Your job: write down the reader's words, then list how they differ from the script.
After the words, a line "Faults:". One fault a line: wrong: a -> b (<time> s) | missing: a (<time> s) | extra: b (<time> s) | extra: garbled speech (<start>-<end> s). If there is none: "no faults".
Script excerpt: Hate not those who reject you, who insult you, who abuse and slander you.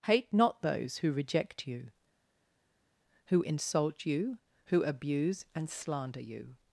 Hate not those who reject you, who insult you, who abuse and slander you.
Faults:
no faults